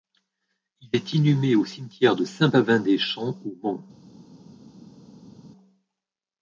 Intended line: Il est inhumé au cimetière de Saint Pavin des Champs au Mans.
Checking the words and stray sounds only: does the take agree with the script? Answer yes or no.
yes